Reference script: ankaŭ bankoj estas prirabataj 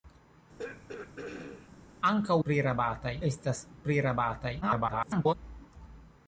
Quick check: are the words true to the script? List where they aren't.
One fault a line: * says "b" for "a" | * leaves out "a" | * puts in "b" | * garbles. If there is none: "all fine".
* says "prirabataj" for "bankoj"
* garbles